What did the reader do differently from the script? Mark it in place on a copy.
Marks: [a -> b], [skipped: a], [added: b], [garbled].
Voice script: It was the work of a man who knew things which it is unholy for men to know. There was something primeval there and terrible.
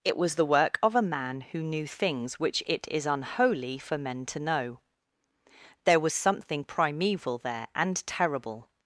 It was the work of a man who knew things which it is unholy for men to know. There was something primeval there and terrible.